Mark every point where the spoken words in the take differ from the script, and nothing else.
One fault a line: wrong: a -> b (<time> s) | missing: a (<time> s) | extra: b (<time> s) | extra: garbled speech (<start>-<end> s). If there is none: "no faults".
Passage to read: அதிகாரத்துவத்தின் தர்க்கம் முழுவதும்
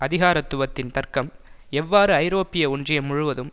extra: எவ்வாறு ஐரோப்பிய ஒன்றியம் (1.7 s)